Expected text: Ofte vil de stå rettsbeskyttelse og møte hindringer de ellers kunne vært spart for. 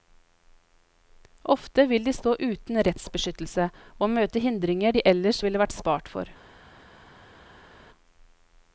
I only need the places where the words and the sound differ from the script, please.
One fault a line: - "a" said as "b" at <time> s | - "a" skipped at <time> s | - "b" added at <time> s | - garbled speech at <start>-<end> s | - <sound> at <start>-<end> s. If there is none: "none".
- "uten" added at 2.4 s
- "kunne" said as "ville" at 5.5 s